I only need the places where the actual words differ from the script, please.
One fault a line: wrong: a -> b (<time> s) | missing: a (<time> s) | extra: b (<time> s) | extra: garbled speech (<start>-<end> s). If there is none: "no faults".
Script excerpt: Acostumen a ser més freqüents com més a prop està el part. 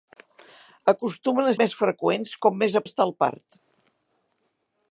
missing: ser (1.5 s)
missing: prop (2.8 s)